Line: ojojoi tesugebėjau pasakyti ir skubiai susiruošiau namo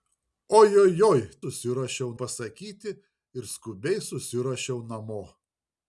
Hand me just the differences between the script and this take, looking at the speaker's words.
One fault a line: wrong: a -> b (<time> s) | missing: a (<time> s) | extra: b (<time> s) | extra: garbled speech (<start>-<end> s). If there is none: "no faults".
wrong: tesugebėjau -> susiruošiau (1.4 s)